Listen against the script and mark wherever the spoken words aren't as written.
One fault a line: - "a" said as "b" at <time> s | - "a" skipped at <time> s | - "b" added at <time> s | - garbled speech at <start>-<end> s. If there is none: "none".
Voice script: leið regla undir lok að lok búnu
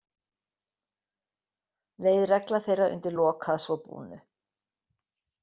- "þeirra" added at 2.7 s
- "lok" said as "svo" at 3.7 s